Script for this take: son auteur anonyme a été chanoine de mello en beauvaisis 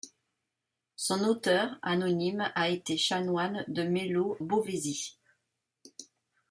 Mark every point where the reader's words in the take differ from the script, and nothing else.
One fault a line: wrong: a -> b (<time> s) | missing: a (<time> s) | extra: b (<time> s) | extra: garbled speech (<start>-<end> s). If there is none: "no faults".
missing: en (4.4 s)